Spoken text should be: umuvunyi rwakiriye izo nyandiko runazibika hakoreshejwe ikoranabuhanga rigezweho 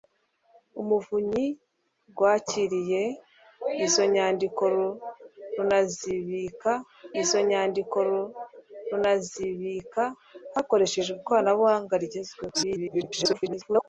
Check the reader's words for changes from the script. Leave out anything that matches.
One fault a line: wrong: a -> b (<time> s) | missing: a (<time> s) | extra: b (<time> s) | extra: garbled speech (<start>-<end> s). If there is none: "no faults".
extra: izo nyandiko runazibika (7.2 s)
extra: garbled speech (12.5-13.9 s)